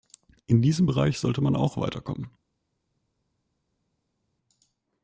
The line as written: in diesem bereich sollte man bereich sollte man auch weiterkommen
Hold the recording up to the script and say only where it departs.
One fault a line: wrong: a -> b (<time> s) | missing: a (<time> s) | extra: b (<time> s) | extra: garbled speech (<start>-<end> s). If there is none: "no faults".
missing: bereich sollte man (1.6 s)